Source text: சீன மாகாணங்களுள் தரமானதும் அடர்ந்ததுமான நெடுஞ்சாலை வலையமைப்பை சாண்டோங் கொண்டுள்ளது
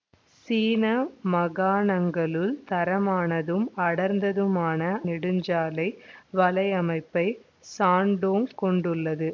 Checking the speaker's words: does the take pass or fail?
pass